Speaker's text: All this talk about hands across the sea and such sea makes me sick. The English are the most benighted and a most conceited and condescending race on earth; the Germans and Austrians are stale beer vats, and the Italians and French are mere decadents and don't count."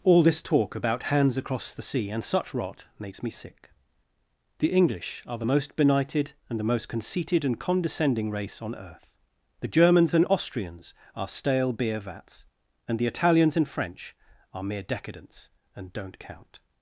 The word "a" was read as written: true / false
false